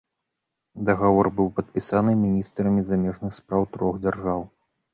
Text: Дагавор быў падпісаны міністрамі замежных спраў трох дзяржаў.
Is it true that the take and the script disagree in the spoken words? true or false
false